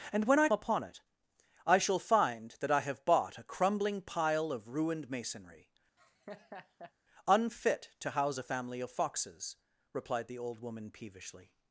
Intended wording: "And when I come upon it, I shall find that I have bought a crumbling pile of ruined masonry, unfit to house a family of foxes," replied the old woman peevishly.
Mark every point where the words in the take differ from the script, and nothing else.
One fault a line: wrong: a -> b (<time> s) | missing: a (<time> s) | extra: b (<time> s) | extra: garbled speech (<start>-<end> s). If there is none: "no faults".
missing: come (0.5 s)